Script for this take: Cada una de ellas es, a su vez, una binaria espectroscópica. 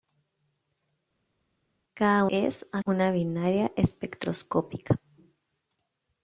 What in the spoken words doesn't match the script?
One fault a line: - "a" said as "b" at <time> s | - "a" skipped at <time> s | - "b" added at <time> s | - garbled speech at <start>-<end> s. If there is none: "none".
- "una de ellas" skipped at 2.3 s
- "su vez" skipped at 2.8 s